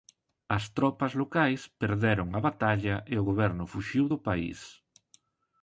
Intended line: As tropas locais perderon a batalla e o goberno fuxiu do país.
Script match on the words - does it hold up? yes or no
yes